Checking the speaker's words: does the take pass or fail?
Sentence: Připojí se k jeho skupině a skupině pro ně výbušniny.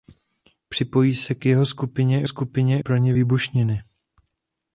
pass